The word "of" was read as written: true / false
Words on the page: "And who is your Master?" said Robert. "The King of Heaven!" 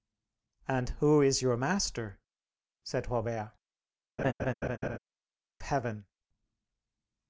false